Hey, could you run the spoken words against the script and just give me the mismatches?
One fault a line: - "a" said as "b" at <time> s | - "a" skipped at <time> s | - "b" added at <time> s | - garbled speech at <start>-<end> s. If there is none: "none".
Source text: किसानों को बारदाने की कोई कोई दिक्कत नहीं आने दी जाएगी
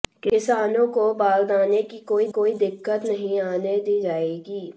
none